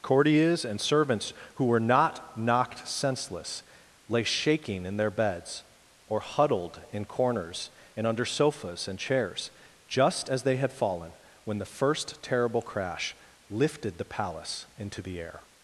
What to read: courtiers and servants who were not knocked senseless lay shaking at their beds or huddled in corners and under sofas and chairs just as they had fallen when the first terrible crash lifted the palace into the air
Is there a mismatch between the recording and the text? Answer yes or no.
yes